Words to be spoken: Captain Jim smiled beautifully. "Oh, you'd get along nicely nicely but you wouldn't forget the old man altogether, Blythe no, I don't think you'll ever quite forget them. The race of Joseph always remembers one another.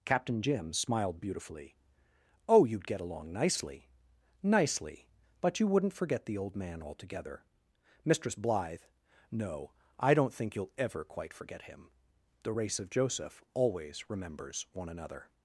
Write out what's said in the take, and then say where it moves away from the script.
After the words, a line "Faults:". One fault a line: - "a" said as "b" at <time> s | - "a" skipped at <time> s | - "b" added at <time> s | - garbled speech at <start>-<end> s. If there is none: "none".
Captain Jim smiled beautifully. "Oh, you'd get along nicely nicely but you wouldn't forget the old man altogether, Mistress Blythe no, I don't think you'll ever quite forget him. The race of Joseph always remembers one another.
Faults:
- "Mistress" added at 8.0 s
- "them" said as "him" at 11.6 s